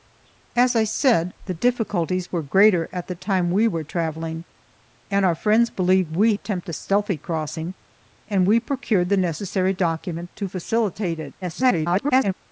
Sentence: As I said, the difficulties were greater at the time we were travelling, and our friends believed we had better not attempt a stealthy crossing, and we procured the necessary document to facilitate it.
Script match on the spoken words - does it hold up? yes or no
no